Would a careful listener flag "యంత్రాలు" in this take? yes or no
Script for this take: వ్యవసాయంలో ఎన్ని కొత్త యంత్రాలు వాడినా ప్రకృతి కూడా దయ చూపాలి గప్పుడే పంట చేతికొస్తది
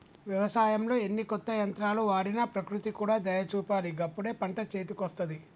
no